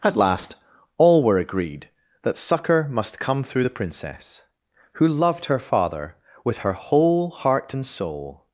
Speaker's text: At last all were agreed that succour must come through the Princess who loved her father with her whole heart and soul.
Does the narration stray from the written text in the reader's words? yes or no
no